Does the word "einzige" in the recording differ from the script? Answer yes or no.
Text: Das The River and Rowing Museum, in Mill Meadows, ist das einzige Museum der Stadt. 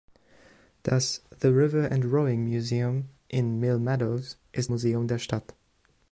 yes